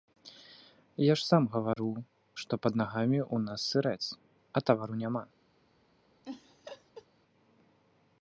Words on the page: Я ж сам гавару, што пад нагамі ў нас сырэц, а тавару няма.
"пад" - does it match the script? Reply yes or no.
yes